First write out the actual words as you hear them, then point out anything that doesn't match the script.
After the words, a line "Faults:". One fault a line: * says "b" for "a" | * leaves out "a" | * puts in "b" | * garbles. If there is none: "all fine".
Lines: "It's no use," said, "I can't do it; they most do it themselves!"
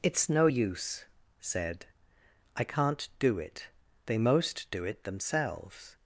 "It's no use," said, "I can't do it; they most do it themselves!"
Faults:
all fine